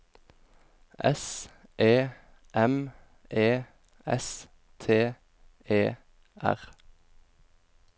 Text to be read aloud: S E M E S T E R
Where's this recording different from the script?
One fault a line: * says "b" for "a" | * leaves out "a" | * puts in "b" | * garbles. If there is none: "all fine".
all fine